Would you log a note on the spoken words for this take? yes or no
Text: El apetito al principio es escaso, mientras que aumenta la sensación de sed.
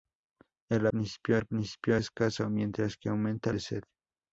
yes